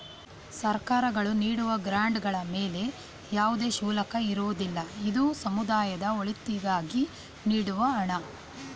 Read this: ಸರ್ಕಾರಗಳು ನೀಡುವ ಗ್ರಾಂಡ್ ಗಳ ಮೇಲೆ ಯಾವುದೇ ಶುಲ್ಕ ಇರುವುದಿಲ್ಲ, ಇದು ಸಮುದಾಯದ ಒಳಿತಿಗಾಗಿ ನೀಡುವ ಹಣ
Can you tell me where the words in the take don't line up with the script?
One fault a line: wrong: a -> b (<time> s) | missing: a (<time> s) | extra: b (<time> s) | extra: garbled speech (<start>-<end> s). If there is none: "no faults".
no faults